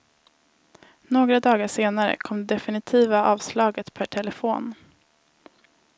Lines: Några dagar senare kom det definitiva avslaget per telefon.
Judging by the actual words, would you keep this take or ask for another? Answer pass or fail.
pass